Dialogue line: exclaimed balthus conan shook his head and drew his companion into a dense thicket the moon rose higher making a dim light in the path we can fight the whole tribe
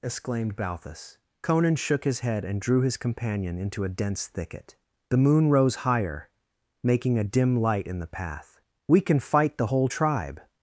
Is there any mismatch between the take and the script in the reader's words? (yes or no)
no